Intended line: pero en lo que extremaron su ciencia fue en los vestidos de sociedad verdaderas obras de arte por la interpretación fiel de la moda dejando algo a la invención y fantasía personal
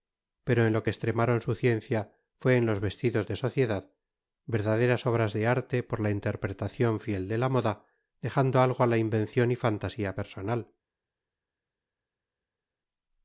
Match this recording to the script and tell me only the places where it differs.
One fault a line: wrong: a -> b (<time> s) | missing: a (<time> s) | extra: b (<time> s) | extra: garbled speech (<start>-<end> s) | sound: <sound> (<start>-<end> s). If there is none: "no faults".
no faults